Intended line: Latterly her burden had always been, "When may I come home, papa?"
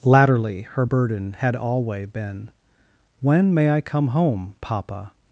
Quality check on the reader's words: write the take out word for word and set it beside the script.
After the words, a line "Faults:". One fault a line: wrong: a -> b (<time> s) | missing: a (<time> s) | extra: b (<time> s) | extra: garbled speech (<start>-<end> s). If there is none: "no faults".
Latterly her burden had alway been, "When may I come home, papa?"
Faults:
wrong: always -> alway (1.5 s)